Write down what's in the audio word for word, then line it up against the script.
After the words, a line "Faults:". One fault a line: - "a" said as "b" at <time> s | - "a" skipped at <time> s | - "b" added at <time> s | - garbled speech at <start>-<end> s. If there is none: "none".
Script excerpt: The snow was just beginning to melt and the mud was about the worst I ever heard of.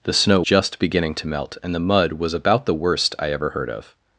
The snow just beginning to melt and the mud was about the worst I ever heard of.
Faults:
- "was" skipped at 0.4 s